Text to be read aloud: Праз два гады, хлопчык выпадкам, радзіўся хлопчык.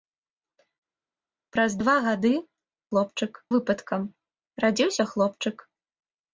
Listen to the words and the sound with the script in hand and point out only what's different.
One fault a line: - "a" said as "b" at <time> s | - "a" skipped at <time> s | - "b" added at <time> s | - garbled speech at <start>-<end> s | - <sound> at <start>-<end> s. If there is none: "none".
none